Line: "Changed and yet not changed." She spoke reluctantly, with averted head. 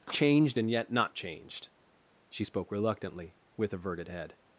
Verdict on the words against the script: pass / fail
pass